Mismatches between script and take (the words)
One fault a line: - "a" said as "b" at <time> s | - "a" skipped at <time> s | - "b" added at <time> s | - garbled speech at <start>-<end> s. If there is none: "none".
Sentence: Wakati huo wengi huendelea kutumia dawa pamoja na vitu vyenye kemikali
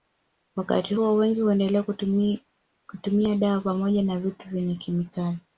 none